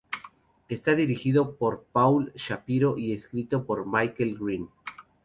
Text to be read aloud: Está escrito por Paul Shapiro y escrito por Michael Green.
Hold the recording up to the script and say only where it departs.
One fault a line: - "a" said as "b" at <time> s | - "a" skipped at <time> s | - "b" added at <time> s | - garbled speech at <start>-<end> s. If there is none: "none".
- "escrito" said as "dirigido" at 0.9 s